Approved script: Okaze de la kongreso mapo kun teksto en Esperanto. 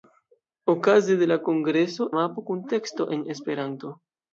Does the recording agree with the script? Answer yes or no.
yes